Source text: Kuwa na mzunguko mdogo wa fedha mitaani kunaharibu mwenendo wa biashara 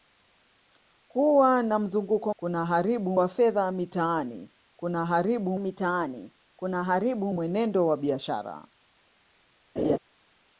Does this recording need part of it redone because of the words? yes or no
yes